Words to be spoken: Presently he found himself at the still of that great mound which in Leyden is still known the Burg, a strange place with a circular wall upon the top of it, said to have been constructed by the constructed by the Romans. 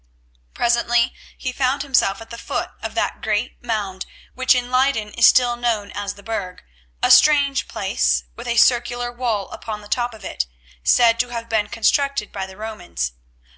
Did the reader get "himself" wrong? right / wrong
right